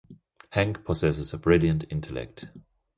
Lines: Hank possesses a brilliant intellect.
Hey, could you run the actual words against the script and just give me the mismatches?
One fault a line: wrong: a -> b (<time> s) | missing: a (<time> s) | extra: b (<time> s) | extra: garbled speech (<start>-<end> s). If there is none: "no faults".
no faults